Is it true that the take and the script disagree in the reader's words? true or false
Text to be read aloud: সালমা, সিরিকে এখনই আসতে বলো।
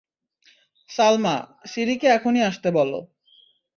false